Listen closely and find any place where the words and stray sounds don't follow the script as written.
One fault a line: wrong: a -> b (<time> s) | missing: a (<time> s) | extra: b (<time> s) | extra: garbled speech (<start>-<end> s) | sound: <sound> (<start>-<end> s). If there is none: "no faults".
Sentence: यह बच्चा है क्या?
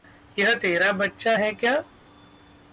extra: तेरा (0.5 s)